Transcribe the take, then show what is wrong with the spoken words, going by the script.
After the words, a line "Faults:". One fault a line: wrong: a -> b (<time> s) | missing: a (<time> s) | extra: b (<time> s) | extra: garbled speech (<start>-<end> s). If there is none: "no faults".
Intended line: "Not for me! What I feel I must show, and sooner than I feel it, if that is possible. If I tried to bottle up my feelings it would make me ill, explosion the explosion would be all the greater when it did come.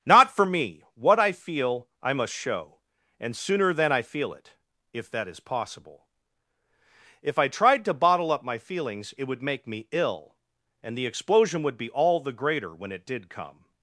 "Not for me! What I feel I must show, and sooner than I feel it, if that is possible. If I tried to bottle up my feelings it would make me ill, and the explosion would be all the greater when it did come.
Faults:
wrong: explosion -> and (10.8 s)